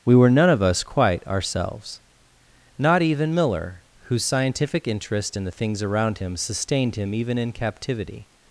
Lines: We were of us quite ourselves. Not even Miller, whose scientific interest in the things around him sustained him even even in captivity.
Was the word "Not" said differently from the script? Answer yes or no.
no